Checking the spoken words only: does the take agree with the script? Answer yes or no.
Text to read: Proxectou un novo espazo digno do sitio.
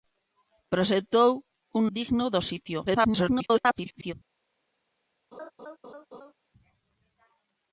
no